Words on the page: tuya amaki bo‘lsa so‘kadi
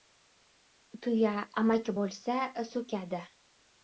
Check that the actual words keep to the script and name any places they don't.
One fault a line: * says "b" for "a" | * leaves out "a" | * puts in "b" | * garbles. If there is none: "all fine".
all fine